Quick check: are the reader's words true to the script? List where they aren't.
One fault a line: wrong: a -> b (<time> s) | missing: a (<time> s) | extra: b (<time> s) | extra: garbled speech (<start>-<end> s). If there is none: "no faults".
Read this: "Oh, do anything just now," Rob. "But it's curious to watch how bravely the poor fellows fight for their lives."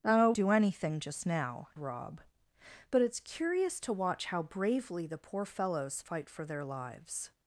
no faults